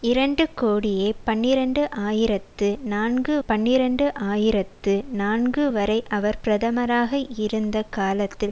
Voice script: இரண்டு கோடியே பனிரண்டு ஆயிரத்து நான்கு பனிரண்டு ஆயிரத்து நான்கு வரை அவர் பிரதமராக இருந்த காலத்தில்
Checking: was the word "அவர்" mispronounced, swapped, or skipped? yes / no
no